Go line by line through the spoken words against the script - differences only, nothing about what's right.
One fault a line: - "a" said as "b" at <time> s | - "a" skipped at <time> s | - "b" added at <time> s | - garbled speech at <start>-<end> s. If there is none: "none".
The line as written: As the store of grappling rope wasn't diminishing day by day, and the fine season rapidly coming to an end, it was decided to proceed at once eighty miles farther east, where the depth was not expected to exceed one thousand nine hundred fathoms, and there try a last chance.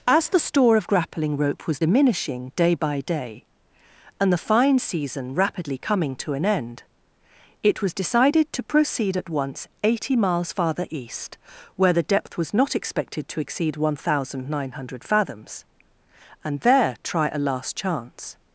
- "wasn't" said as "was" at 1.7 s